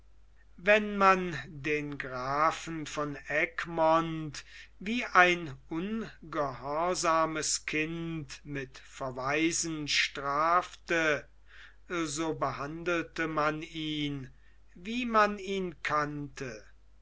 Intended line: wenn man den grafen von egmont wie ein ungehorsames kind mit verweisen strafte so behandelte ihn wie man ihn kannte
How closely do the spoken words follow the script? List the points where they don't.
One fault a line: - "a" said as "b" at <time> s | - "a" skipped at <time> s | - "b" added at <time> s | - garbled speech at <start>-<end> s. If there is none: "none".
- "man" added at 13.3 s